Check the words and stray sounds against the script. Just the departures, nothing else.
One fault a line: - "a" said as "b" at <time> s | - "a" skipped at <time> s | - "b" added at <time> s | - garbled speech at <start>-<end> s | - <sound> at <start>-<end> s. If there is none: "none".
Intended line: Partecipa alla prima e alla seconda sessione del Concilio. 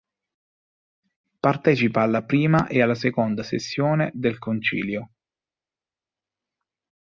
none